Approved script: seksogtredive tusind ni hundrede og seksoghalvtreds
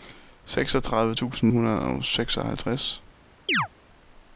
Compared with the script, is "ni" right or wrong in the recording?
wrong